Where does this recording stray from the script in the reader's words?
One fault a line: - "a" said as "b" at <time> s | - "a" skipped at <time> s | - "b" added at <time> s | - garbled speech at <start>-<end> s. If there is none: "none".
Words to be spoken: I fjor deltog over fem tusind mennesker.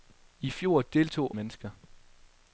- "over fem tusind" skipped at 1.4 s